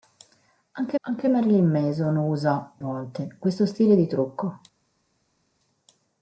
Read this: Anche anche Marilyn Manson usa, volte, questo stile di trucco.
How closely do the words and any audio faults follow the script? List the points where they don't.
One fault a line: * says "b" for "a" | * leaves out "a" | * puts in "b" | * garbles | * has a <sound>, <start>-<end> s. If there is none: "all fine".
all fine